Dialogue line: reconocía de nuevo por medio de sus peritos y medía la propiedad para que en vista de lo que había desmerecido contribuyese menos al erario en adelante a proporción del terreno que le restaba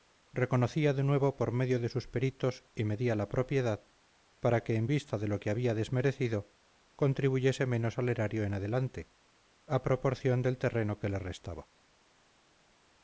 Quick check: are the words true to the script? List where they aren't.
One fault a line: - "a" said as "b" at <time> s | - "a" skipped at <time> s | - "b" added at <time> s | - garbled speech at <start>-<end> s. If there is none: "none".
none